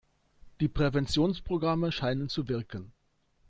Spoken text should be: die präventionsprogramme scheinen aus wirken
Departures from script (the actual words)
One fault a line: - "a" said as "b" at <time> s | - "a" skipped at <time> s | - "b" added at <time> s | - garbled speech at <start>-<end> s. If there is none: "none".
- "aus" said as "zu" at 2.3 s